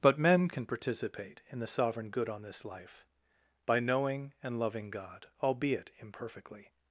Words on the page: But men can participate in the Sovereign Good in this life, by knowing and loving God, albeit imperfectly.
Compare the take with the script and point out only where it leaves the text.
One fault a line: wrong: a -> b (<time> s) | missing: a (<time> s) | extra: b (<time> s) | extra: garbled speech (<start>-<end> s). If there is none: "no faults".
wrong: in -> on (2.3 s)